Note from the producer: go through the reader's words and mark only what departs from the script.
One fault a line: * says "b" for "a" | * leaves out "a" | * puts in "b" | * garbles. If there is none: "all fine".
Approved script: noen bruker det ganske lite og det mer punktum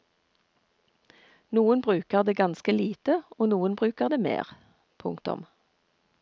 * puts in "noen bruker"